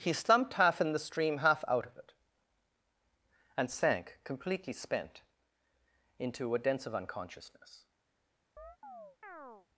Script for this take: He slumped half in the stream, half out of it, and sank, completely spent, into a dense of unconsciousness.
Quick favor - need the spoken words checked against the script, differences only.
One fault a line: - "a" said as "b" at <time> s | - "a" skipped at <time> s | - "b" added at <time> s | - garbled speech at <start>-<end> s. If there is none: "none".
none